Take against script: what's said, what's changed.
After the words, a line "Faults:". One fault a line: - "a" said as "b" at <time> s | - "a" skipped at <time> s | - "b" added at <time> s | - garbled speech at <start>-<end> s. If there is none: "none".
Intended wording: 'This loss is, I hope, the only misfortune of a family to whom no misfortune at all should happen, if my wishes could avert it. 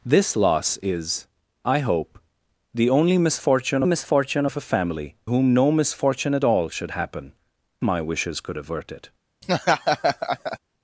'This loss is, I hope, the only misfortune misfortune of a family whom no misfortune at all should happen, my wishes could avert it.
Faults:
- "misfortune" added at 3.9 s
- "to" skipped at 5.2 s
- "if" skipped at 7.3 s